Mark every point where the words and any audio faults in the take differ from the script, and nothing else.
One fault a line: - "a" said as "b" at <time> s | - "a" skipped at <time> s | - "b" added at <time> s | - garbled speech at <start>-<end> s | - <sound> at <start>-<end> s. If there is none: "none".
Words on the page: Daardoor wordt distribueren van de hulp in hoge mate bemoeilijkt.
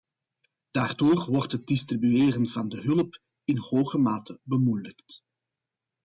- "het" added at 1.5 s